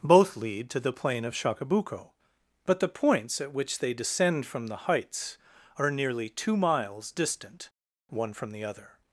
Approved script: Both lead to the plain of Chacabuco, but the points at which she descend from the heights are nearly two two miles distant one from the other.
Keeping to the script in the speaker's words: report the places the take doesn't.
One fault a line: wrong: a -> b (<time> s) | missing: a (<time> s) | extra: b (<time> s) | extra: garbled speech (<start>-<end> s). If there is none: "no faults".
wrong: she -> they (3.8 s)
missing: two (6.6 s)